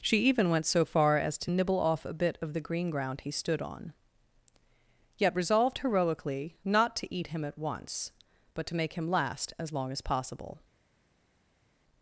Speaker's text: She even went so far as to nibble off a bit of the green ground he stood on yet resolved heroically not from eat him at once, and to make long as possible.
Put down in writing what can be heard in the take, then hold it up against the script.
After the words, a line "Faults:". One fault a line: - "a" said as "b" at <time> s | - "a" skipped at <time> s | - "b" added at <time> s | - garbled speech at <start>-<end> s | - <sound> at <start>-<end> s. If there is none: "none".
She even went so far as to nibble off a bit of the green ground he stood on yet resolved heroically not to eat him at once, but to make him last as long as possible.
Faults:
- "from" said as "to" at 6.9 s
- "and" said as "but" at 8.5 s
- "him last as" added at 8.9 s